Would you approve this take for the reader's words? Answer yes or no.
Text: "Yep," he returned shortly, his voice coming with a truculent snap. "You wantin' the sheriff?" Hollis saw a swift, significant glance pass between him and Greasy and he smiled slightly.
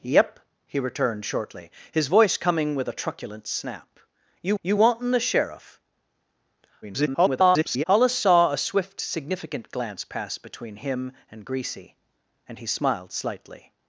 no